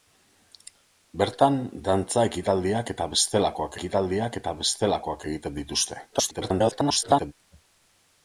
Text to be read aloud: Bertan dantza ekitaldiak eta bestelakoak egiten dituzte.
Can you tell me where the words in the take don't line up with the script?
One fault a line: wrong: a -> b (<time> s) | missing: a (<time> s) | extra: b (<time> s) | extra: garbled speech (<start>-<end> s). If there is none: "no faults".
extra: ekitaldiak eta bestelakoak (3.8 s)
extra: garbled speech (6.1-7.3 s)